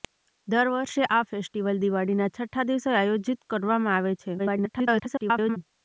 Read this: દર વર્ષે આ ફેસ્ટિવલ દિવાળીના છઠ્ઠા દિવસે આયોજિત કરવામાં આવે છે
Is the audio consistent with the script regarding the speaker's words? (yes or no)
no